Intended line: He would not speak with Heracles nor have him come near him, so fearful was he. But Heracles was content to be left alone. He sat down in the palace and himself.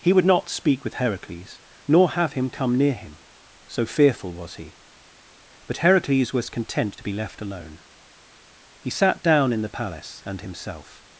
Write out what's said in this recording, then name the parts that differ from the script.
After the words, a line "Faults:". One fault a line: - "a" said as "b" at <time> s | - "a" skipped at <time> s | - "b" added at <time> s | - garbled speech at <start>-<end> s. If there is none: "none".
He would not speak with Heracles nor have him come near him, so fearful was he. But Heracles was content to be left alone. He sat down in the palace and himself.
Faults:
none